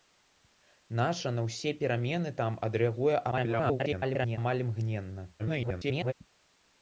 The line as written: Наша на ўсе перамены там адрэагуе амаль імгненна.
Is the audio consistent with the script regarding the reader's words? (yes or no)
no